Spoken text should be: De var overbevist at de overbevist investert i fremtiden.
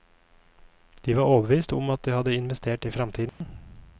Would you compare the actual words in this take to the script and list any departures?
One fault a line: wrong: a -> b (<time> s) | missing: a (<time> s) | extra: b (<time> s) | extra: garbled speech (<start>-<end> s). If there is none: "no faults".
extra: om (1.7 s)
wrong: overbevist -> hadde (2.1 s)